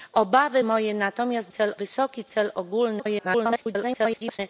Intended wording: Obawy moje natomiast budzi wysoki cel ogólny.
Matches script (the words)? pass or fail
fail